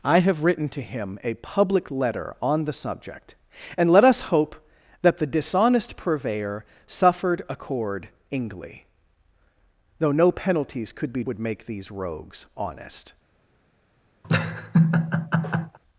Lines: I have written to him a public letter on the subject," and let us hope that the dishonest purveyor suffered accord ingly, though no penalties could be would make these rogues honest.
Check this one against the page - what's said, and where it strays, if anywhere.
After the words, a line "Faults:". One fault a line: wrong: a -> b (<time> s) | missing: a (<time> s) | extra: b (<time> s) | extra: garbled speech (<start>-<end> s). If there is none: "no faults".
I have written to him a public letter on the subject," and let us hope that the dishonest purveyor suffered accord ingly, though no penalties could be would make these rogues honest.
Faults:
no faults